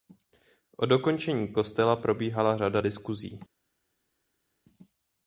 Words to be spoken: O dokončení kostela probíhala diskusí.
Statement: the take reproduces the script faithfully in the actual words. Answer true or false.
false